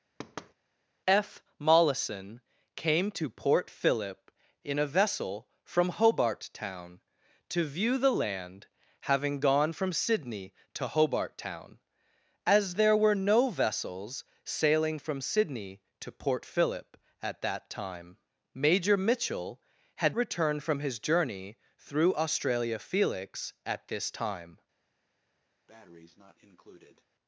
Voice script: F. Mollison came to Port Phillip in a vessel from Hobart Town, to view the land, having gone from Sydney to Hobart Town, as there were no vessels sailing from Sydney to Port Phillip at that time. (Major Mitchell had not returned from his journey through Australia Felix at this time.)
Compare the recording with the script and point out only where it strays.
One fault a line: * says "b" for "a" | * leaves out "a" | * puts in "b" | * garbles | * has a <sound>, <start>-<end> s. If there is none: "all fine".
* has a thud, 0.2-0.5 s
* leaves out "not"
* has a breath, 25.7-27.0 s